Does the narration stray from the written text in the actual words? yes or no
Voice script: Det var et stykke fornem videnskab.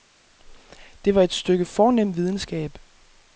no